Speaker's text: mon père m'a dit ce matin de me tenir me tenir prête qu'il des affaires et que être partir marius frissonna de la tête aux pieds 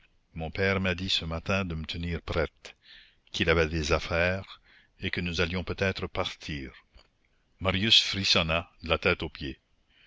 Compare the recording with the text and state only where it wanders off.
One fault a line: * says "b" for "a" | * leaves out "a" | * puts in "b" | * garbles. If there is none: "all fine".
* leaves out "me tenir"
* puts in "avait"
* puts in "nous allions peut"